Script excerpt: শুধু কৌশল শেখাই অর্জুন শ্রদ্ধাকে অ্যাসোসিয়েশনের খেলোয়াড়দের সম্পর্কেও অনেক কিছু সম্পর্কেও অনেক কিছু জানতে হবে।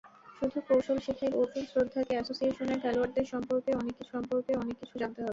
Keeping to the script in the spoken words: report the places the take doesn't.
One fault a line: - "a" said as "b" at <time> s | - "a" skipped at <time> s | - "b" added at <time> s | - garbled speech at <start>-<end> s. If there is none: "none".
none